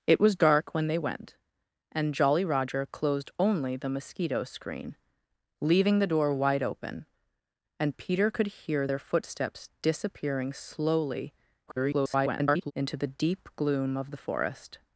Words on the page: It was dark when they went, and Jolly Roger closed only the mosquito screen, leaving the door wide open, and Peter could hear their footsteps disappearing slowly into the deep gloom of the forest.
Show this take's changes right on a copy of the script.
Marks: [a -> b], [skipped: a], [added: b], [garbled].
It was dark when they went, and Jolly Roger closed only the mosquito screen, leaving the door wide open, and Peter could hear their footsteps disappearing slowly [garbled] into the deep gloom of the forest.